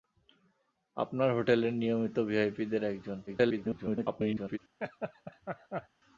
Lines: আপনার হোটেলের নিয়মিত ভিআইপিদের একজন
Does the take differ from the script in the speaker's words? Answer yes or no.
yes